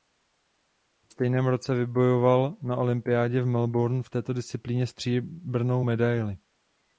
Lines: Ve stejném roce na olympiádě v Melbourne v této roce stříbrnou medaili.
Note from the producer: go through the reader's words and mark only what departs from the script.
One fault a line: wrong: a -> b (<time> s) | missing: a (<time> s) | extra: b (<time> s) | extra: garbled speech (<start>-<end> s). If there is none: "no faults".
extra: vybojoval (1.8 s)
wrong: roce -> disciplíně (4.3 s)